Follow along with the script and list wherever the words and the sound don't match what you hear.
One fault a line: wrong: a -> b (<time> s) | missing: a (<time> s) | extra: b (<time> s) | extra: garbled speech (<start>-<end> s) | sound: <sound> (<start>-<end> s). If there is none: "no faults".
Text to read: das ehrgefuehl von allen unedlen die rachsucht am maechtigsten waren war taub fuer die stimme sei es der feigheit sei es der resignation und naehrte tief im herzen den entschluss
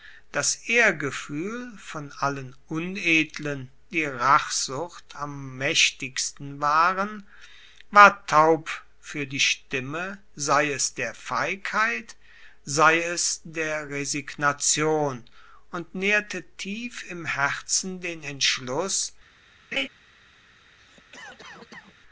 sound: laugh (19.7-19.9 s)
sound: cough (20.8-22.0 s)